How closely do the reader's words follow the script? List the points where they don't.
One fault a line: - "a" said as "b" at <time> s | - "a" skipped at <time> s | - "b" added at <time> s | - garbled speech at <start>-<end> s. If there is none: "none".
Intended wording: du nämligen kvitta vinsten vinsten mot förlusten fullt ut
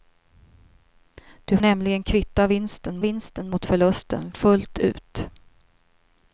none